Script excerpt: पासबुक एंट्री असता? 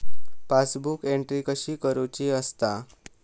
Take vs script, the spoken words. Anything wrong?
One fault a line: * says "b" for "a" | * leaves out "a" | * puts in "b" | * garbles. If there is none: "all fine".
* puts in "कशी करुची"